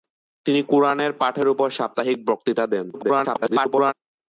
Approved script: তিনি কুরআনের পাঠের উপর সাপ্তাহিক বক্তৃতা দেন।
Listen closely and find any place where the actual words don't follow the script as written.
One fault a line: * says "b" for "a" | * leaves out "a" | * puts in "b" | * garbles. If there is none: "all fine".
* garbles